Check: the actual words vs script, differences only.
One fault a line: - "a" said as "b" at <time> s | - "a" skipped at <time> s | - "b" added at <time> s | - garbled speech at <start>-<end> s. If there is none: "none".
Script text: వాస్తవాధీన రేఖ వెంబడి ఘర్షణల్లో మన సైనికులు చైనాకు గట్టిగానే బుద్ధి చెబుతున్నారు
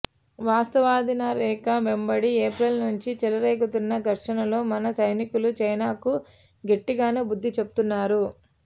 - "ఏప్రిల్ నుంచి చెలరేగుతున్న" added at 2.5 s